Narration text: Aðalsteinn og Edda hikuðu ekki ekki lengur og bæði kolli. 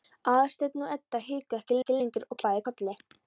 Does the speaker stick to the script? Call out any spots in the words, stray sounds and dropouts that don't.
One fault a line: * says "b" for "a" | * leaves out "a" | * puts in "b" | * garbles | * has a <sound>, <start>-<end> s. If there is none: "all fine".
all fine